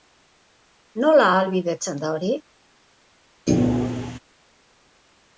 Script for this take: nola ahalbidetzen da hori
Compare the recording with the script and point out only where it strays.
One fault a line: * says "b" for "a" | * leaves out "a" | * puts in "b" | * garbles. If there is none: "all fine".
all fine